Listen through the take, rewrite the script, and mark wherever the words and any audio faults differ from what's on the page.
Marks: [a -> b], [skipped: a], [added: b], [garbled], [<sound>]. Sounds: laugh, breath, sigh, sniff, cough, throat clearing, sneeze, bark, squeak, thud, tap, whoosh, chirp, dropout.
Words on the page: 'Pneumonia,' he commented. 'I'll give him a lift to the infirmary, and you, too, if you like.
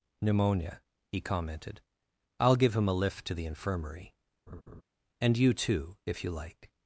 'Pneumonia,' he commented. 'I'll give him a lift to the infirmary, [laugh] and you, too, if you like.